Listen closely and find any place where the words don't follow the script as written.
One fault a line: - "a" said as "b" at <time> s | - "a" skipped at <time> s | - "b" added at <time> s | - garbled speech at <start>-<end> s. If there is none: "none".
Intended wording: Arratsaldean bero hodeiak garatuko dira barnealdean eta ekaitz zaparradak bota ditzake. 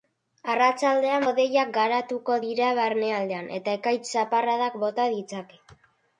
- "bero" skipped at 1.2 s